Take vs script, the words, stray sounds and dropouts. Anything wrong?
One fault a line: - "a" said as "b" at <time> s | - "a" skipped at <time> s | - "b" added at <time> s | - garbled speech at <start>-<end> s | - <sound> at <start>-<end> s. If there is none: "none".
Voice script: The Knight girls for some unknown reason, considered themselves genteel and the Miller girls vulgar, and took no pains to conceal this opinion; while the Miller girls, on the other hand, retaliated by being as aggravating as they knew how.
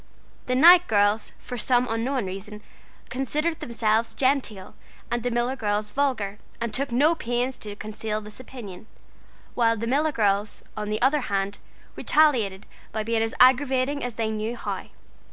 none